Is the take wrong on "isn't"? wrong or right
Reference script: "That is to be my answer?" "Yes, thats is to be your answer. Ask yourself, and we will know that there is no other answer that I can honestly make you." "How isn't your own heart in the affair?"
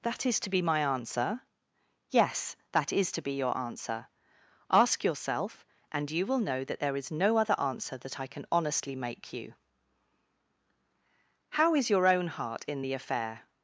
wrong